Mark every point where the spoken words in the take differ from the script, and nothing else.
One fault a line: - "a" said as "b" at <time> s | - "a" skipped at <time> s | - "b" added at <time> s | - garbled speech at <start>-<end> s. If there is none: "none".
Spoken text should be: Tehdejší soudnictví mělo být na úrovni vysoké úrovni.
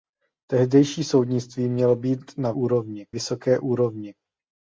none